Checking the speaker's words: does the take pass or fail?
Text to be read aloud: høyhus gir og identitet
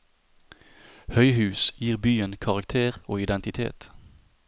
fail